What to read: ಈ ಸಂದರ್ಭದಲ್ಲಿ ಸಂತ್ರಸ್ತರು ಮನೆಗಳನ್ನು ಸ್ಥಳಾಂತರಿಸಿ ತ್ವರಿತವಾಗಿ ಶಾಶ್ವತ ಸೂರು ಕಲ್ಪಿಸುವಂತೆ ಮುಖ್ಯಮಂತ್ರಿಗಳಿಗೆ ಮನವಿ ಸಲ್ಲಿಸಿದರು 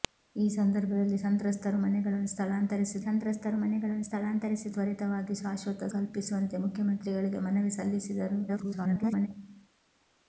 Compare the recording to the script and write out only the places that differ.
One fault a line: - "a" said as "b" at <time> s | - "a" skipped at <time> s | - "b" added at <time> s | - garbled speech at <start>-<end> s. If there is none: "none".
- "ಸಂತ್ರಸ್ತರು ಮನೆಗಳನ್ನು ಸ್ಥಳಾಂತರಿಸಿ" added at 3.0 s
- "ಸೂರು" skipped at 5.9 s
- garbled speech at 8.5-9.3 s